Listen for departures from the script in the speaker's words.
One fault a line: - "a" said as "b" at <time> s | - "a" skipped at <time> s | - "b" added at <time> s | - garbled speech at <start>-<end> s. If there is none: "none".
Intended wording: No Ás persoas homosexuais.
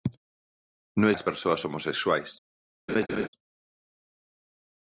none